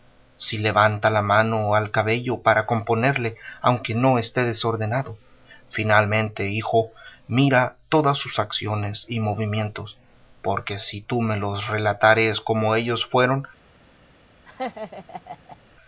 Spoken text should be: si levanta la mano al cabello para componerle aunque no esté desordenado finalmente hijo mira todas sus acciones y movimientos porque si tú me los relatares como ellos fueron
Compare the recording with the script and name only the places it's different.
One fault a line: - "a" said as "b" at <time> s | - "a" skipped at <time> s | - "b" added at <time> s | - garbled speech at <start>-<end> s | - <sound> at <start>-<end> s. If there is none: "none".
- laugh at 14.5-15.6 s